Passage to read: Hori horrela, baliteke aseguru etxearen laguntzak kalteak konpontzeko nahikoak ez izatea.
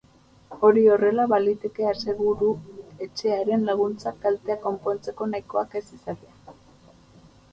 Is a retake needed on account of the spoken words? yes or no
no